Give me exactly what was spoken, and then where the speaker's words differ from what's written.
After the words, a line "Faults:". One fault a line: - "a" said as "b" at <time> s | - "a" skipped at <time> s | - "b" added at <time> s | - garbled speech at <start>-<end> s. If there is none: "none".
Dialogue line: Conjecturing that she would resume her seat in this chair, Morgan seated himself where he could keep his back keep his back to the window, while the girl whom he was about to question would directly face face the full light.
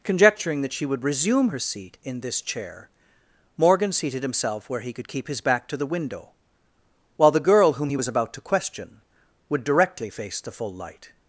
Conjecturing that she would resume her seat in this chair, Morgan seated himself where he could keep his back to the window, while the girl whom he was about to question would directly face the full light.
Faults:
- "keep his back" skipped at 5.7 s
- "face" skipped at 10.4 s